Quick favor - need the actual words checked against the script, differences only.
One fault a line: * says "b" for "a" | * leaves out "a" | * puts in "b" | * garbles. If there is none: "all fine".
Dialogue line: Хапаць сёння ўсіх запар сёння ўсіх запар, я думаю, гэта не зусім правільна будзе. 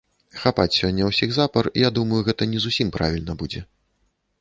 * leaves out "сёння ўсіх запар"